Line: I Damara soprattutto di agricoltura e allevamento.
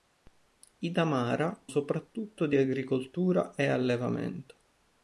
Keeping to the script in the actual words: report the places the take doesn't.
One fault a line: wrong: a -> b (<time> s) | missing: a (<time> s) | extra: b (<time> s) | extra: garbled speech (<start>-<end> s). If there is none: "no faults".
no faults